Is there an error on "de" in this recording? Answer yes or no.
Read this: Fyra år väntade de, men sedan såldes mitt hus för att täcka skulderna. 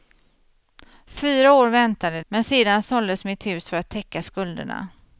yes